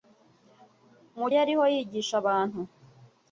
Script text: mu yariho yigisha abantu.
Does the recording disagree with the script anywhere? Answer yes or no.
no